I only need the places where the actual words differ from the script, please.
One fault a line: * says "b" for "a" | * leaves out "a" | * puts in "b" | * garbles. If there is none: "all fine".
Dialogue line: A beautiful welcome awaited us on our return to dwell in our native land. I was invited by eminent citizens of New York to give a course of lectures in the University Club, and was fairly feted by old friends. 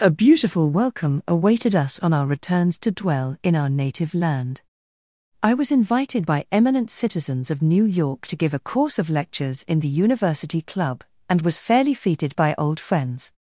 * says "returns" for "return"